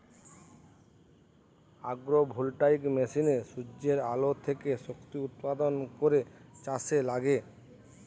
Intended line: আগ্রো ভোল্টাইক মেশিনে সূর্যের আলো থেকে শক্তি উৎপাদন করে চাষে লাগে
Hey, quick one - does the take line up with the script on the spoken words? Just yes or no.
yes